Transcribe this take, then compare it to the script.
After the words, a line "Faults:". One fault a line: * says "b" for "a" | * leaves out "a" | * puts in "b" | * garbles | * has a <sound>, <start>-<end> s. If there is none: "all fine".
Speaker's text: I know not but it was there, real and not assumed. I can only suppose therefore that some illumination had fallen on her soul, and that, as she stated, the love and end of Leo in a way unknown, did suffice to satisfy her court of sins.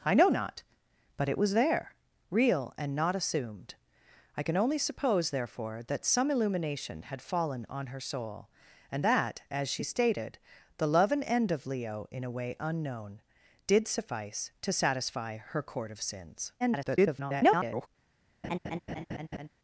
I know not but it was there, real and not assumed. I can only suppose therefore that some illumination had fallen on her soul, and that, as she stated, the love and end of Leo in a way unknown, did suffice to satisfy her court of sins. [garbled]
Faults:
* garbles
* has a laugh, 18.4-19.5 s